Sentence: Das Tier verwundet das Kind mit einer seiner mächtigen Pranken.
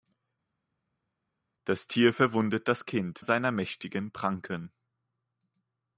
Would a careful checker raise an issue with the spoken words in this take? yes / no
yes